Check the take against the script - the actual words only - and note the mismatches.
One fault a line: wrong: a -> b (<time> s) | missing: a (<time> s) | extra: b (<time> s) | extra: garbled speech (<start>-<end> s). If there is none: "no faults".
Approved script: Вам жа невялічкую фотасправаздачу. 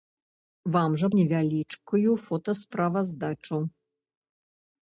no faults